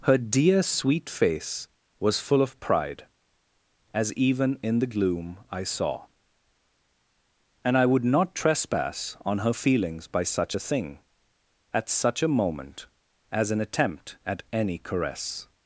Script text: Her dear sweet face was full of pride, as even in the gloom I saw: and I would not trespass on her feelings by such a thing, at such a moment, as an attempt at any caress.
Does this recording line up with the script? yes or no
yes